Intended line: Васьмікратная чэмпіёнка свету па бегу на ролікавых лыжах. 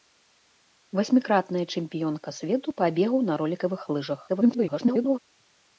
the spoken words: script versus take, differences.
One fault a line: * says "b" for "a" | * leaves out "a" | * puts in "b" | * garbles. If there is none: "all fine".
* garbles